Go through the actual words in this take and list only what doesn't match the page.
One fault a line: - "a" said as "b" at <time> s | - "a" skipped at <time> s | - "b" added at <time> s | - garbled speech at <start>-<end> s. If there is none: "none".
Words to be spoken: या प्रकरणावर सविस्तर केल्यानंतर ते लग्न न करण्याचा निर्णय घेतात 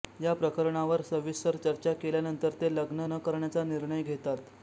- "चर्चा" added at 1.6 s